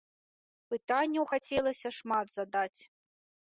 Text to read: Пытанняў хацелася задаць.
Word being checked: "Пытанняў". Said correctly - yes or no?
yes